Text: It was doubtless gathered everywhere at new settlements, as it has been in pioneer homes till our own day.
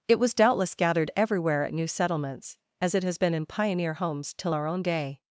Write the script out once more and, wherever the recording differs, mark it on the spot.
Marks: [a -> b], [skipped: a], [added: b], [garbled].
It was doubtless gathered everywhere at new settlements, as it has been in pioneer homes till our own day.